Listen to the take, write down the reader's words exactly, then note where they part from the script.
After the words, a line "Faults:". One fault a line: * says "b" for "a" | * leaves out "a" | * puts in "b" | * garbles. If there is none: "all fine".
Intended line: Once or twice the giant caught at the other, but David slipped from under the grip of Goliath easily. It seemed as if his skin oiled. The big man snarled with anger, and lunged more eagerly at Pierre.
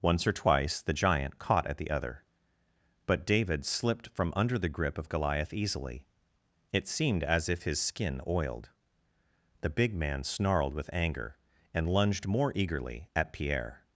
Once or twice the giant caught at the other, but David slipped from under the grip of Goliath easily. It seemed as if his skin oiled. The big man snarled with anger, and lunged more eagerly at Pierre.
Faults:
all fine